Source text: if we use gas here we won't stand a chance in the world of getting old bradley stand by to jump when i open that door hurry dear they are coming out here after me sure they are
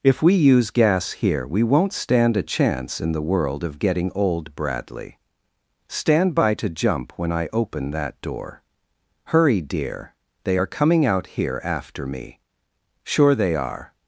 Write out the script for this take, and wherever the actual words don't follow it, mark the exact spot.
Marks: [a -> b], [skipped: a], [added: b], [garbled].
if we use gas here we won't stand a chance in the world of getting old bradley stand by to jump when i open that door hurry dear they are coming out here after me sure they are